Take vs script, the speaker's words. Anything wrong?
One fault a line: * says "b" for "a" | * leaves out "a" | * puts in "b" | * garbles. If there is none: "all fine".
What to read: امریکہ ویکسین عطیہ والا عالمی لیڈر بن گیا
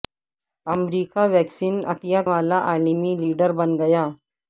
all fine